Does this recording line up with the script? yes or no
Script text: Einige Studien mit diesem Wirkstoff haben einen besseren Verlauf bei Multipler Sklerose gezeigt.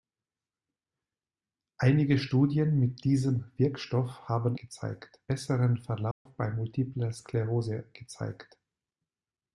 no